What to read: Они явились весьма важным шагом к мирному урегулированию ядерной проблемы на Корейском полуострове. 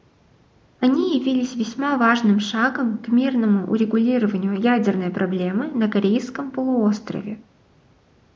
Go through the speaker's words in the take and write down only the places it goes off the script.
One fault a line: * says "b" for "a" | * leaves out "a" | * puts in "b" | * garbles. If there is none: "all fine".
all fine